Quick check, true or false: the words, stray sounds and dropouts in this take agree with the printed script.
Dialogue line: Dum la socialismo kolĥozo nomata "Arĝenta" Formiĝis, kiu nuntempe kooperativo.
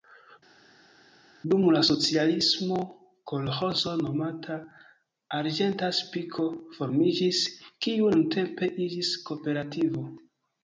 false